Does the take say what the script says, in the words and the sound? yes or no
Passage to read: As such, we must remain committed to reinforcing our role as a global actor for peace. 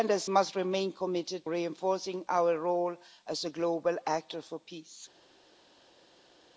no